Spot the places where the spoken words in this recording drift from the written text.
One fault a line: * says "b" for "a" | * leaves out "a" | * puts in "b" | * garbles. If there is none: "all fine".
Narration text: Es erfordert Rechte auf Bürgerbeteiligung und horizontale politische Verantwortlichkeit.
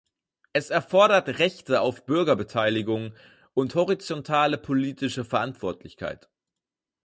all fine